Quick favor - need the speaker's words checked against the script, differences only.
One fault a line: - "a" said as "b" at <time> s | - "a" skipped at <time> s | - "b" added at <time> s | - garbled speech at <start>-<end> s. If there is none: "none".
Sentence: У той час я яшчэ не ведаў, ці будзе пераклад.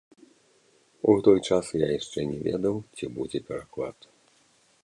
none